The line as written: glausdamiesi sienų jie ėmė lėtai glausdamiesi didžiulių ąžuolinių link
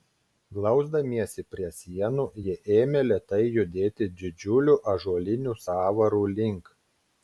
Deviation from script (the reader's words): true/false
true